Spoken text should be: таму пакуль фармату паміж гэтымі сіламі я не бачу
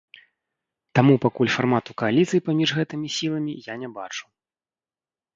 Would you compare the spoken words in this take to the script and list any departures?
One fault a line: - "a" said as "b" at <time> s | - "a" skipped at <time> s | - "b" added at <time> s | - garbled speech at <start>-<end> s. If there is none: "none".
- "кааліцыі" added at 2.0 s